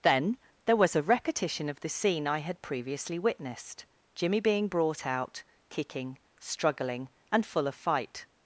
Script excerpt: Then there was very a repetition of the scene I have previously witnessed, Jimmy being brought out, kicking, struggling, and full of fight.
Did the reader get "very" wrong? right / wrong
wrong